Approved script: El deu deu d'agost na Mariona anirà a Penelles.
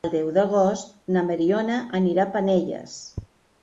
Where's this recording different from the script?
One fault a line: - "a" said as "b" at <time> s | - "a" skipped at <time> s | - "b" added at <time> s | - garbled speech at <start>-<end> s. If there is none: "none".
- "deu" skipped at 0.3 s